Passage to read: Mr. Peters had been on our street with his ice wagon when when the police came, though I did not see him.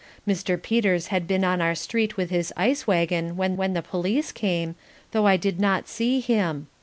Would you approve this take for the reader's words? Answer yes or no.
yes